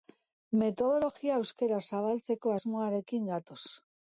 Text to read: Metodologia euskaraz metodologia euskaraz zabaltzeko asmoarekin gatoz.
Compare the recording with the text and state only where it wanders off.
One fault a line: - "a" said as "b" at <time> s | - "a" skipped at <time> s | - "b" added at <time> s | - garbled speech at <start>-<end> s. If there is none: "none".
- "metodologia euskaraz" skipped at 1.8 s